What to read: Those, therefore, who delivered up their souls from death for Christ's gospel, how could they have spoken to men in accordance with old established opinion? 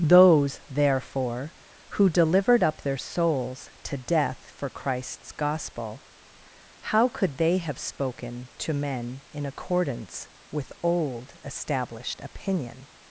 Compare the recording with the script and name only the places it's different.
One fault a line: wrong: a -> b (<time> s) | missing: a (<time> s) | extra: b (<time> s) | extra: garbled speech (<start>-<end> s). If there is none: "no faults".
wrong: from -> to (3.8 s)